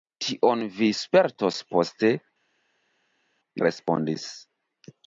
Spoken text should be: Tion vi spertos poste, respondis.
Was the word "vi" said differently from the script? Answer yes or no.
no